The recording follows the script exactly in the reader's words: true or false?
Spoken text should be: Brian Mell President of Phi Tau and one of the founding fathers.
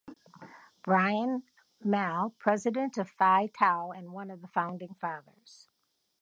true